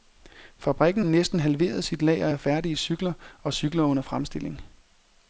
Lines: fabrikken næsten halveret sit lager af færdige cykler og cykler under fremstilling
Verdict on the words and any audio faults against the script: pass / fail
pass